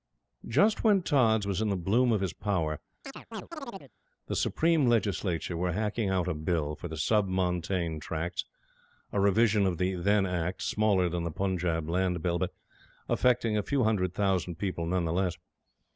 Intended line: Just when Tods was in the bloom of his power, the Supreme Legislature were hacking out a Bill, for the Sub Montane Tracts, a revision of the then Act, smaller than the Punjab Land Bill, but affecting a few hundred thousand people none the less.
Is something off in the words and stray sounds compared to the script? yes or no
yes